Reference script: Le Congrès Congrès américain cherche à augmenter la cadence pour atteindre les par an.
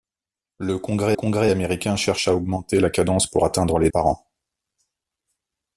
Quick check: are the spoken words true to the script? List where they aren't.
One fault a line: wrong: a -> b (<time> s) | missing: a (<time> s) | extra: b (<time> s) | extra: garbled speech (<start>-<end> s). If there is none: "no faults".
no faults